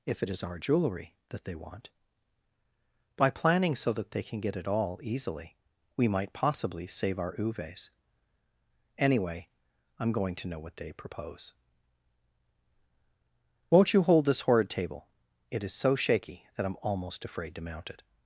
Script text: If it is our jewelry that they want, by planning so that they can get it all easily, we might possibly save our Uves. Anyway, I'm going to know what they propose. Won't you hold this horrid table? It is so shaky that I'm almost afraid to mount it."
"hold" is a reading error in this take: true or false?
false